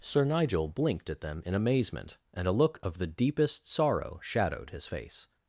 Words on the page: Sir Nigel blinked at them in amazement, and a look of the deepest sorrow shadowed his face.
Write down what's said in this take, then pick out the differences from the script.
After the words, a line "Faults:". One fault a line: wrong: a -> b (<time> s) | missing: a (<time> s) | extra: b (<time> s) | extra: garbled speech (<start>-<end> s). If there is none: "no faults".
Sir Nigel blinked at them in amazement, and a look of the deepest sorrow shadowed his face.
Faults:
no faults